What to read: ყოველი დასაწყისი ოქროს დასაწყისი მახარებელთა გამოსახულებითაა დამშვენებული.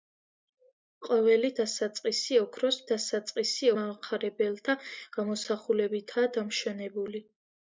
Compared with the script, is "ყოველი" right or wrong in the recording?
right